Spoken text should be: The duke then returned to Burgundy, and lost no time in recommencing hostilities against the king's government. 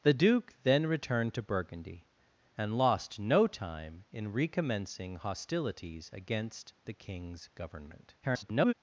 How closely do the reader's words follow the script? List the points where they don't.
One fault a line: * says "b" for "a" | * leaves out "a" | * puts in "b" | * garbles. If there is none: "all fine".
* garbles